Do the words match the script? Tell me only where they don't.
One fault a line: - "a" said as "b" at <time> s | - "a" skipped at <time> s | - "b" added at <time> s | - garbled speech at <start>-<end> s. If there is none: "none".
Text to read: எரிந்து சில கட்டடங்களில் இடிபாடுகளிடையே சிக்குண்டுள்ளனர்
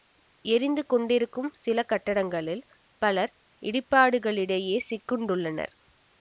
- "கொண்டிருக்கும்" added at 0.8 s
- "பலர்" added at 3.0 s